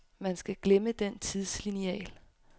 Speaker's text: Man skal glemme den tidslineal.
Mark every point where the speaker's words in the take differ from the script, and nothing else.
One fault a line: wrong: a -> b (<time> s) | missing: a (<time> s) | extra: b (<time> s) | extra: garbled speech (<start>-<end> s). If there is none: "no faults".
no faults